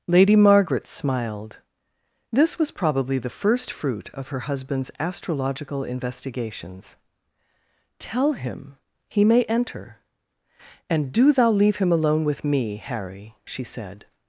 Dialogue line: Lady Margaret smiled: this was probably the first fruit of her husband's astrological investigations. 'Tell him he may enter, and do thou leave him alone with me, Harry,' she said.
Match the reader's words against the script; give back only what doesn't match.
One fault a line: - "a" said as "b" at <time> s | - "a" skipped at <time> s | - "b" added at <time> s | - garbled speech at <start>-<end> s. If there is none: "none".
none